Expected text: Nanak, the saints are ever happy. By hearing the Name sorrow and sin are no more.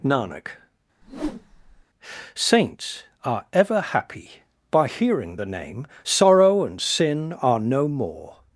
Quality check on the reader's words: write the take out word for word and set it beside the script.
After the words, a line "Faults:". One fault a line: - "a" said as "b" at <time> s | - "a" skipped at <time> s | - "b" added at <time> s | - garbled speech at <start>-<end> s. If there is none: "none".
Nanak, saints are ever happy. By hearing the Name sorrow and sin are no more.
Faults:
- "the" skipped at 0.5 s